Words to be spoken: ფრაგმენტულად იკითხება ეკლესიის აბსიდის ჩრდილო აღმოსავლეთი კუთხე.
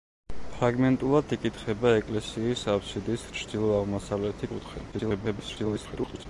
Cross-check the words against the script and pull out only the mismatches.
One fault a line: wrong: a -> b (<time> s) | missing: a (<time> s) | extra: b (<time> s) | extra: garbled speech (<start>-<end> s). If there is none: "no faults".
extra: garbled speech (4.9-6.3 s)